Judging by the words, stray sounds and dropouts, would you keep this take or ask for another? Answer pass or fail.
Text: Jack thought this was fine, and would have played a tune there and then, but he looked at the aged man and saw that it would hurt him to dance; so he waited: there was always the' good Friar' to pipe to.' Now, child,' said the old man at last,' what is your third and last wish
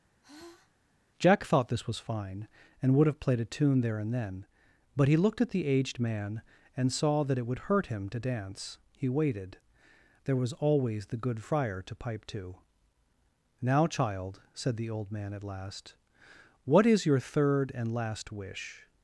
fail